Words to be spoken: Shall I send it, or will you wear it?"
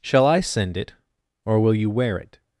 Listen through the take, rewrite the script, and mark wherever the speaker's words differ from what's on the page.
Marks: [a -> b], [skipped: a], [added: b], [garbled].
Shall I send it, or will you wear it?"